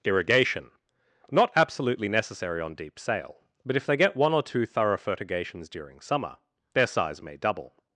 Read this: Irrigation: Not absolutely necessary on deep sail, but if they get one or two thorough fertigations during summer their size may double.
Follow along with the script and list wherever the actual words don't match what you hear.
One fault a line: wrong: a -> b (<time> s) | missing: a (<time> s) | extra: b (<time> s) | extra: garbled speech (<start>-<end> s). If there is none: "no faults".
no faults